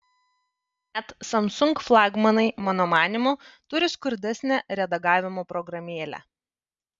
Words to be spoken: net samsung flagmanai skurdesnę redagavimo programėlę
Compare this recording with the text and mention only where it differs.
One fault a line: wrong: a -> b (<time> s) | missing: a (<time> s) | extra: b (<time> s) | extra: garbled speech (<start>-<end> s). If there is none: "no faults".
extra: mano manymu turi (2.7 s)